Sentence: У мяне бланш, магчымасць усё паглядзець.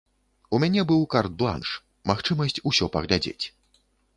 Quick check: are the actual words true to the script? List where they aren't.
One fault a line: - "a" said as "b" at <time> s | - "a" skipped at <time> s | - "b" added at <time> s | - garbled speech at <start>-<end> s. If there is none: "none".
- "быў карт" added at 0.9 s